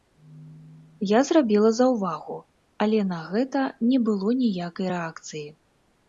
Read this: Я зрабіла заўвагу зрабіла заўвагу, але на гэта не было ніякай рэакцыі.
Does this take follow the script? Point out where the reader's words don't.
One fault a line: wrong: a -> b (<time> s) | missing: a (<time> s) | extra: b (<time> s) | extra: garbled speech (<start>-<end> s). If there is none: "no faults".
missing: зрабіла заўвагу (2.4 s)